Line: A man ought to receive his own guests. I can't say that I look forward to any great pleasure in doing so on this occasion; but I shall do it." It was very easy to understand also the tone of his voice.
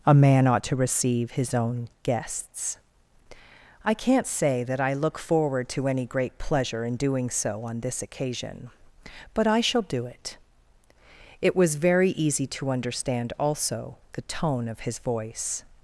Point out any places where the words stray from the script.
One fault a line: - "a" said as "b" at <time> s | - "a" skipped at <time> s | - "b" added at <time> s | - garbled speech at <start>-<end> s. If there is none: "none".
none